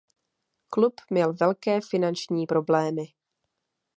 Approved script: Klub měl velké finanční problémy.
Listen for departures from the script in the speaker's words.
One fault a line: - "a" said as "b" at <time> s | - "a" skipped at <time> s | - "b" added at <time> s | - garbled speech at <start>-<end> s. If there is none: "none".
none